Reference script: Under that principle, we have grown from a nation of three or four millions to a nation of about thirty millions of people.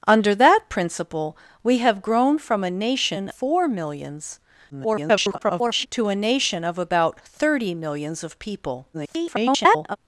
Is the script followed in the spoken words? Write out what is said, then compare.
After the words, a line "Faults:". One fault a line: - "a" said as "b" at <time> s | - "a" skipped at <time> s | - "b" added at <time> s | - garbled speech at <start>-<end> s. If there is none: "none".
Under that principle, we have grown from a nation four millions [garbled] to a nation of about thirty millions of people. [garbled]
Faults:
- "of three or" skipped at 3.3 s
- garbled speech at 4.7-5.9 s
- garbled speech at 8.9-10.0 s